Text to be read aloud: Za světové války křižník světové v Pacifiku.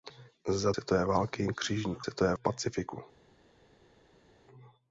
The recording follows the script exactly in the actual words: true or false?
true